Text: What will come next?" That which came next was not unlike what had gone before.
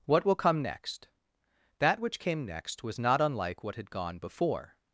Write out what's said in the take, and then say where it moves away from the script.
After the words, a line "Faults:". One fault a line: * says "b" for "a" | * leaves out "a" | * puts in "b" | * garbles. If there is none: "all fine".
What will come next?" That which came next was not unlike what had gone before.
Faults:
all fine